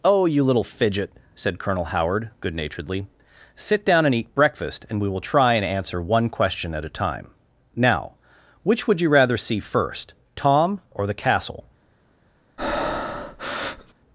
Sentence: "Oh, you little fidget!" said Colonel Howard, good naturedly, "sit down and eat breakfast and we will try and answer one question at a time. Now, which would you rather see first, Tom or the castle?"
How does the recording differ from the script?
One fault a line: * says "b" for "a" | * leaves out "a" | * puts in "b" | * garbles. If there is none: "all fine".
all fine